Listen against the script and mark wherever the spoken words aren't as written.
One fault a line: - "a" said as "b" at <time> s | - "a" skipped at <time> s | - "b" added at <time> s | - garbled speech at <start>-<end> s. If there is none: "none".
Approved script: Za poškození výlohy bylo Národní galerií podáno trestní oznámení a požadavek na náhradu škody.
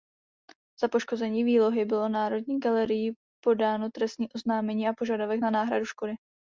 none